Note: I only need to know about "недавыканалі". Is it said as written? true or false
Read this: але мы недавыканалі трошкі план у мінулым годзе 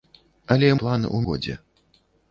false